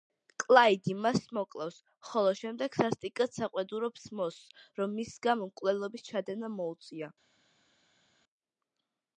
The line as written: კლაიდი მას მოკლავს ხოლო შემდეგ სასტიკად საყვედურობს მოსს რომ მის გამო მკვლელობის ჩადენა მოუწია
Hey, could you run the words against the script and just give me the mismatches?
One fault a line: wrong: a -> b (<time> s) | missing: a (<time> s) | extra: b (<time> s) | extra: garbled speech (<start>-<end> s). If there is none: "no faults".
no faults